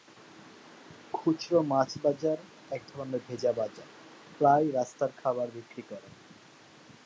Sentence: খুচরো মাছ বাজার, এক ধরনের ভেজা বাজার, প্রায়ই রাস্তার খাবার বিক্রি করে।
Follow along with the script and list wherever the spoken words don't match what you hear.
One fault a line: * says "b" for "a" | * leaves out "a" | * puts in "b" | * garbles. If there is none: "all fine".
all fine